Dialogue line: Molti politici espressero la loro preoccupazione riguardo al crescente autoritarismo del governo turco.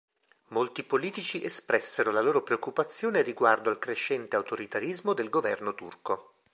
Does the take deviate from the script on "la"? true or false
false